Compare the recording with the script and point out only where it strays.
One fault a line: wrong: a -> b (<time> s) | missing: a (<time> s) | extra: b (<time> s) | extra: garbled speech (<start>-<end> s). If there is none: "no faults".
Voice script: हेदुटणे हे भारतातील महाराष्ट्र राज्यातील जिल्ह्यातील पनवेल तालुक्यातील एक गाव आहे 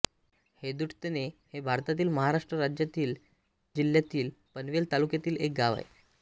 no faults